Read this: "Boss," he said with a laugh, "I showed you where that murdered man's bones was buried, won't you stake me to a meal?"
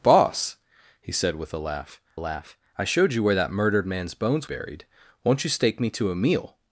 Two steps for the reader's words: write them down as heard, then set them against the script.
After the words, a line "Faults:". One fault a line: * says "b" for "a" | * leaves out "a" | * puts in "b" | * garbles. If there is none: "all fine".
"Boss," he said with a laugh laugh, "I showed you where that murdered man's bones buried, won't you stake me to a meal?"
Faults:
* puts in "laugh"
* leaves out "was"